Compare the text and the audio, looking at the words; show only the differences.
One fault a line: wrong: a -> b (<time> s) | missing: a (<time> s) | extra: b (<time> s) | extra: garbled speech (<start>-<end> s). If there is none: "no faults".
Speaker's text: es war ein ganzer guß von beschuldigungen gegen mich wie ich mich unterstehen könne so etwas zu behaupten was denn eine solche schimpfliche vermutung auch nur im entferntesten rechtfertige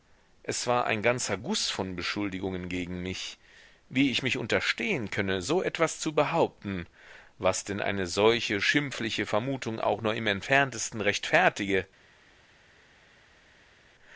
no faults